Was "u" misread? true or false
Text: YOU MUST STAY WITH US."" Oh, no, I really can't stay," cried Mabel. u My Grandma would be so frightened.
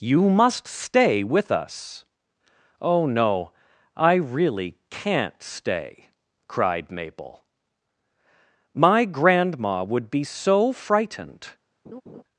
true